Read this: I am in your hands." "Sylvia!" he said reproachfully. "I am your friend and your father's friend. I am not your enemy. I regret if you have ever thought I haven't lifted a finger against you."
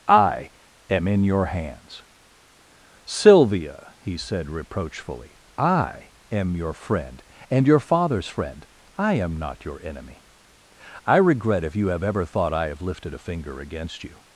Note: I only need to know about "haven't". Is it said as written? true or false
false